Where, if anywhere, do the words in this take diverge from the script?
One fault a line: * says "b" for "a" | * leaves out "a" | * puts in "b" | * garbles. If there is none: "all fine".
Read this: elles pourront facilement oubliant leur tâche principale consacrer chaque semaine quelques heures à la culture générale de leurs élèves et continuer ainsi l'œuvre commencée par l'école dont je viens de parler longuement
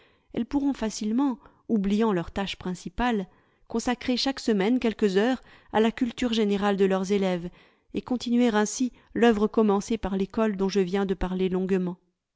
all fine